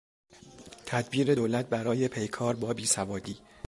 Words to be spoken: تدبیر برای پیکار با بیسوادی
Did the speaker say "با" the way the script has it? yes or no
yes